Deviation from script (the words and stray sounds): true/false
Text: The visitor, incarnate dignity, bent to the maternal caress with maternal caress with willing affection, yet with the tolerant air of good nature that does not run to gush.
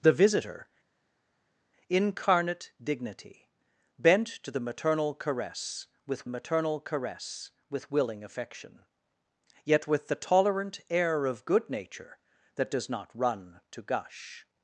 false